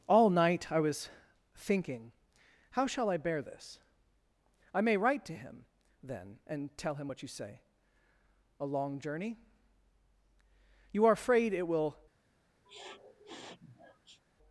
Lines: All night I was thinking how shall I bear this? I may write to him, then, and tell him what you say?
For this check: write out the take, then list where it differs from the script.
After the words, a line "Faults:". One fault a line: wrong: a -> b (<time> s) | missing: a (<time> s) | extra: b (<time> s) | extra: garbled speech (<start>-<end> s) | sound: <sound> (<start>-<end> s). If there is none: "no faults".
All night I was thinking how shall I bear this? I may write to him, then, and tell him what you say? A long journey? You are afraid it will
Faults:
extra: A long journey You are afraid it will (8.6 s)
sound: sniff (12.7-14.2 s)